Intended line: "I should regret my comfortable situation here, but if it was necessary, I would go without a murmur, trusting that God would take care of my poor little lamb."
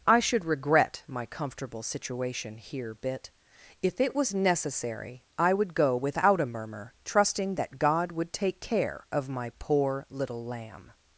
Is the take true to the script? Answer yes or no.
no